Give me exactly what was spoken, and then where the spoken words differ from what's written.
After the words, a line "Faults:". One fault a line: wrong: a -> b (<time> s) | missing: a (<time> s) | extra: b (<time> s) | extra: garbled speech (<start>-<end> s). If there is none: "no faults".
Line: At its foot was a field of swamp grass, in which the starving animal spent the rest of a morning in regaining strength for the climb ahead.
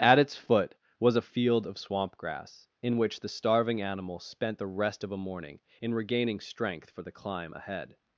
At its foot was a field of swamp grass, in which the starving animal spent the rest of a morning in regaining strength for the climb ahead.
Faults:
no faults